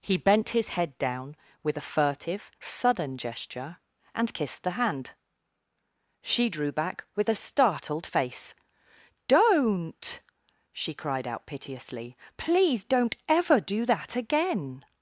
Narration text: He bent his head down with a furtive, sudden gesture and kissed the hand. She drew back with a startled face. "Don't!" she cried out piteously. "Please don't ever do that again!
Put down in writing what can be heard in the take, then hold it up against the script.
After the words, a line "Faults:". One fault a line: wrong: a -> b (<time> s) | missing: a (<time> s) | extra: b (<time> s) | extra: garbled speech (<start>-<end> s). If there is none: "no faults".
He bent his head down with a furtive, sudden gesture and kissed the hand. She drew back with a startled face. "Don't!" she cried out piteously. "Please don't ever do that again!
Faults:
no faults